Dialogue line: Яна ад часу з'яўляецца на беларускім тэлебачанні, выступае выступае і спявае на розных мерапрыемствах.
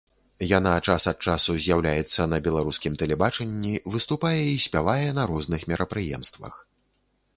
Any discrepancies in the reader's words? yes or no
yes